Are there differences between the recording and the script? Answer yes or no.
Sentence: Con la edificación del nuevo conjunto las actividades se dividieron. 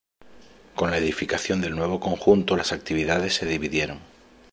no